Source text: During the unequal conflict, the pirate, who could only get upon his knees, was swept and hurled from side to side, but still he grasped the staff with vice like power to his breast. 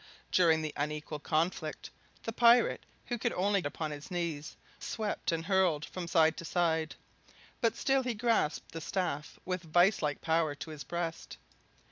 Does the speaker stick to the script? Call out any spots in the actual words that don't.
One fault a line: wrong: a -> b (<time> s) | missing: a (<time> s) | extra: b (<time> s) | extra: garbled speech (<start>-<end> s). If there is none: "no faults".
missing: get (3.6 s)
missing: was (4.5 s)